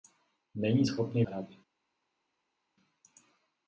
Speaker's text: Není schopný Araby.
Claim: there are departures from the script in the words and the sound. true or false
false